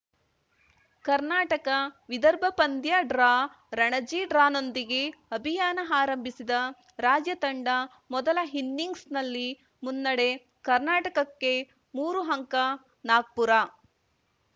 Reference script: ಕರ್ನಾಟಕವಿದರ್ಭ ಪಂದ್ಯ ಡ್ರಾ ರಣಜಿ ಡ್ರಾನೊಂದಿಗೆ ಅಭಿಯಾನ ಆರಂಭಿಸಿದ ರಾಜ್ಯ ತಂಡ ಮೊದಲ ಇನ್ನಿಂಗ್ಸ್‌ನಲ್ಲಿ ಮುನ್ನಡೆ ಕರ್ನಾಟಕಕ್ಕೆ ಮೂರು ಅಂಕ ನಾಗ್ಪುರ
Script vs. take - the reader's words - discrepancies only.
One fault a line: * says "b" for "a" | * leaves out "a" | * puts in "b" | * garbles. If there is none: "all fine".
all fine